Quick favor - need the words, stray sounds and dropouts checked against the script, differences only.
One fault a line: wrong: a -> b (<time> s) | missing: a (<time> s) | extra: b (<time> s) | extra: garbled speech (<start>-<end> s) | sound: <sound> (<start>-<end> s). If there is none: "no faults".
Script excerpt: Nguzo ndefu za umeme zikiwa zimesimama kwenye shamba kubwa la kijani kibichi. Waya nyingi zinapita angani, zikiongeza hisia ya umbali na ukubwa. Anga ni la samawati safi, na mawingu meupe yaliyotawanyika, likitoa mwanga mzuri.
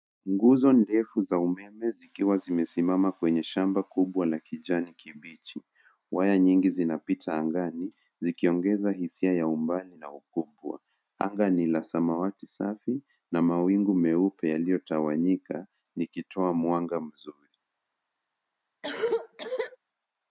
sound: cough (18.8-19.8 s)